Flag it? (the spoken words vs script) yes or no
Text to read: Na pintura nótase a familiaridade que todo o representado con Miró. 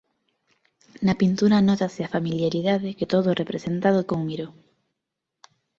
no